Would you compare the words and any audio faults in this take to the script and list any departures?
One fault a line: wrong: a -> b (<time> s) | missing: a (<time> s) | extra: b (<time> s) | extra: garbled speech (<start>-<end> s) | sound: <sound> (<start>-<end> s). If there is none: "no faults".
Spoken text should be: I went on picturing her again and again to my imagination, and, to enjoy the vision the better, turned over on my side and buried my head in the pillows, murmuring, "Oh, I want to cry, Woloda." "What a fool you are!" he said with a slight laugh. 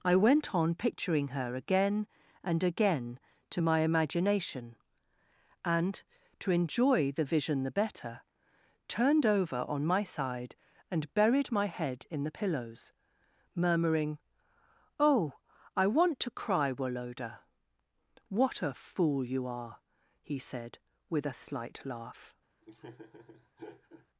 sound: laugh (22.6-24.1 s)